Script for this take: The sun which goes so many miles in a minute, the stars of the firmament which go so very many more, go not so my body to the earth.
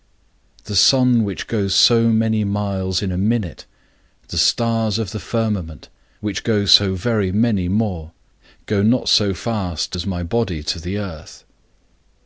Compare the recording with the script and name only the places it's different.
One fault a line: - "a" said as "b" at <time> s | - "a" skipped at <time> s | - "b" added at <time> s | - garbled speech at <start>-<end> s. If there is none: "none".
- "fast as" added at 9.3 s